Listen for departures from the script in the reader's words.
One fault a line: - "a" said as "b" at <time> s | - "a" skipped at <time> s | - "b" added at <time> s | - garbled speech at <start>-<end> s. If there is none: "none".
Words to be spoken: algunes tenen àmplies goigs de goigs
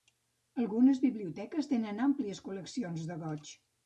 - "biblioteques" added at 1.0 s
- "goigs" said as "col·leccions" at 2.4 s